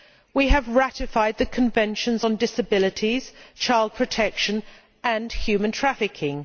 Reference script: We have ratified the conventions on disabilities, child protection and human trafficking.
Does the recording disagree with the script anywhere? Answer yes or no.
no